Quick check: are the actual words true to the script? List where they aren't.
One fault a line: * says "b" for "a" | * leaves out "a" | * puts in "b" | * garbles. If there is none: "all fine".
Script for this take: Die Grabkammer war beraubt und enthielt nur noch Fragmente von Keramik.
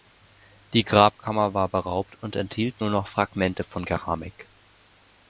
all fine